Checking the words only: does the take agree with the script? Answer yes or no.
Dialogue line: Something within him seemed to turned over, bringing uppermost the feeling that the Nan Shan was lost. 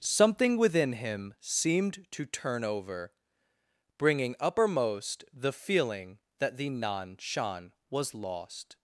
no